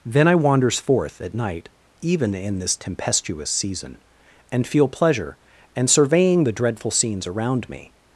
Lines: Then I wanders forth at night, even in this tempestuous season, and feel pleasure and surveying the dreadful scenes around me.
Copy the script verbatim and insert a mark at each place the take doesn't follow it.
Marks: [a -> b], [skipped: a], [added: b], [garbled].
Then I wanders forth at night, even in this tempestuous season, and feel pleasure and surveying the dreadful scenes around me.